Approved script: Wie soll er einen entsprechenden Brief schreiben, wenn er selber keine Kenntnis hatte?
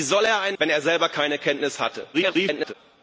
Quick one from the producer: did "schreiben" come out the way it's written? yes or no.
no